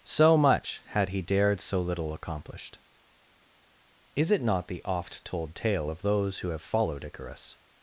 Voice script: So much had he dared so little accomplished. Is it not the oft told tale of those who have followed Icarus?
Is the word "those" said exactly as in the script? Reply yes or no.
yes